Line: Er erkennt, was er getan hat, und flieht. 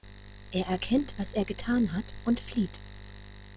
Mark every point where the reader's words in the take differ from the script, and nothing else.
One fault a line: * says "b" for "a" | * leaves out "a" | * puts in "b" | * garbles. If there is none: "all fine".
all fine